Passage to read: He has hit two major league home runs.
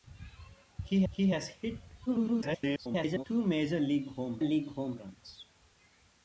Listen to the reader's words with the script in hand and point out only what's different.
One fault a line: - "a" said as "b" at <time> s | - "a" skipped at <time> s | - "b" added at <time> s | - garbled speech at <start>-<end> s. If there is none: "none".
- "he" added at 1.1 s
- garbled speech at 2.1-3.2 s
- "league home" added at 4.4 s